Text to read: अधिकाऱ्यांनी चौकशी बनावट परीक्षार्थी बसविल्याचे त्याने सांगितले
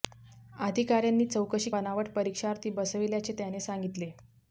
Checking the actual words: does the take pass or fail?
pass